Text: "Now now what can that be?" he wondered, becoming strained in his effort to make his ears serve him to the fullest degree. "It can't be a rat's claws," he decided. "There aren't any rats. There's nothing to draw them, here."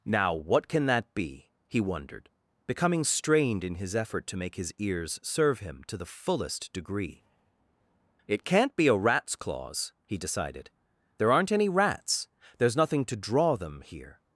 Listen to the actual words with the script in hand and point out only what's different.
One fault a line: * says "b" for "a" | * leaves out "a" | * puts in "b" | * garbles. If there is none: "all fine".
* leaves out "now"